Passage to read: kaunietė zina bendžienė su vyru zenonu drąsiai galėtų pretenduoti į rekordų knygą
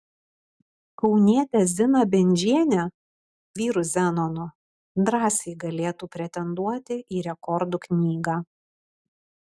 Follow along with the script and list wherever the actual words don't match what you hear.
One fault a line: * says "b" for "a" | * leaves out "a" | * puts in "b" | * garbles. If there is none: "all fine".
* leaves out "su"